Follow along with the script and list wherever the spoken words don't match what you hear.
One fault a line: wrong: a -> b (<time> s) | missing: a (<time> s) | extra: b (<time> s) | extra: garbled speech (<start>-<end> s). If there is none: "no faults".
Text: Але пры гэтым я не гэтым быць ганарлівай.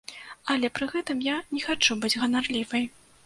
wrong: гэтым -> хачу (1.7 s)